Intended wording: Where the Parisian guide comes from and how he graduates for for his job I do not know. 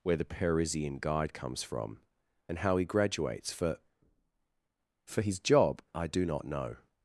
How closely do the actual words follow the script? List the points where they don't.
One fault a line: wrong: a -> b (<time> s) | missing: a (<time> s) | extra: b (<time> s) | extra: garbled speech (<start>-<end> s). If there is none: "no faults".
no faults